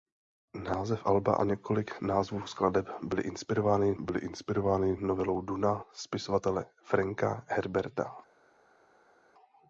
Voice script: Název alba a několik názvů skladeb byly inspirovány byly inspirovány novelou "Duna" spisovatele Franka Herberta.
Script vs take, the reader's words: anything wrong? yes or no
no